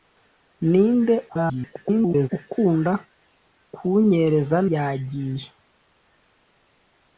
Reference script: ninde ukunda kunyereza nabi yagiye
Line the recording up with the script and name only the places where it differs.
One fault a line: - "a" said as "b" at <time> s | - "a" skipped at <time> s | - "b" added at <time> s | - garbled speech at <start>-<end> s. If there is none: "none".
- garbled speech at 1.3-2.3 s
- "nabi" skipped at 4.6 s